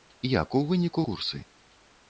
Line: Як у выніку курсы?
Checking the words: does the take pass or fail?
pass